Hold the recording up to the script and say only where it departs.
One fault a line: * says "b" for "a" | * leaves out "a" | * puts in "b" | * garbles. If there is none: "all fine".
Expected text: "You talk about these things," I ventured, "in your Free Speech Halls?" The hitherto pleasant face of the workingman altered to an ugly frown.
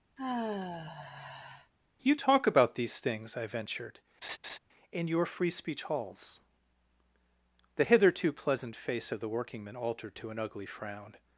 all fine